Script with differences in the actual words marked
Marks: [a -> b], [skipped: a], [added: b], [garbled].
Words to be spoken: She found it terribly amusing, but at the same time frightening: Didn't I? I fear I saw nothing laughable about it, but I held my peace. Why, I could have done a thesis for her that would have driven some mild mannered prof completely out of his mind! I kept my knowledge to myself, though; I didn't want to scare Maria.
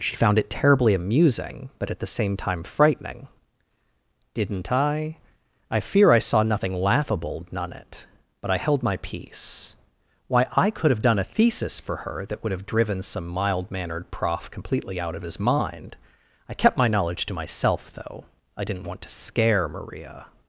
She found it terribly amusing, but at the same time frightening: Didn't I? I fear I saw nothing laughable [about -> none] it, but I held my peace. Why, I could have done a thesis for her that would have driven some mild mannered prof completely out of his mind! I kept my knowledge to myself, though; I didn't want to scare Maria.